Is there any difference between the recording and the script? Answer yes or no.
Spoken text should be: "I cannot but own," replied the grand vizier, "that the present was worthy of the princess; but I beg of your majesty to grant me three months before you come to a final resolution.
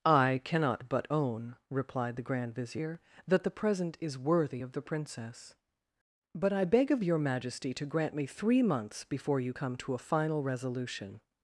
yes